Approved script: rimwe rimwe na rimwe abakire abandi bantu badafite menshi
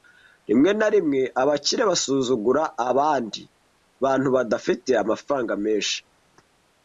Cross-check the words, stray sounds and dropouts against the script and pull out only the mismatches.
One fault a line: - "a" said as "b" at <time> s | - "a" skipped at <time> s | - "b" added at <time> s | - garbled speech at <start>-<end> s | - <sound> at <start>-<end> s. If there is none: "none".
- "rimwe" skipped at 0.7 s
- "basuzugura" added at 1.9 s
- "amafaranga" added at 5.0 s